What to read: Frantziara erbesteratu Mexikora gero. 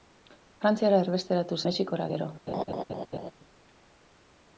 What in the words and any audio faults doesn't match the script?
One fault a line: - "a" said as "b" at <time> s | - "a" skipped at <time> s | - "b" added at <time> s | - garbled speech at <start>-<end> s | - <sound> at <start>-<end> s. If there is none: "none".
- laugh at 2.5-3.3 s